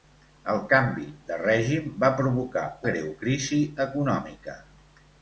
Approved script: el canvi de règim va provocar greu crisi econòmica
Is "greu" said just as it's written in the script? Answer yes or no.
yes